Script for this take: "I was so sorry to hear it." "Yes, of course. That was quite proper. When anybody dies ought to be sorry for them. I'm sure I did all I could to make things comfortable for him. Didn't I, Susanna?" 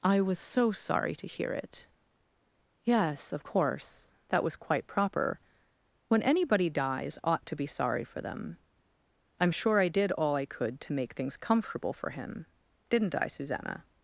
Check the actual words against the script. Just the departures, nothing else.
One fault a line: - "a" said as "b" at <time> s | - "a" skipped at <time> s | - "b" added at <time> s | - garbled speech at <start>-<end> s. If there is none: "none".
none